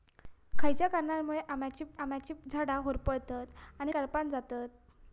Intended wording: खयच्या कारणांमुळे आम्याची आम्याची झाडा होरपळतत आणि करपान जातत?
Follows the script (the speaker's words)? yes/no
yes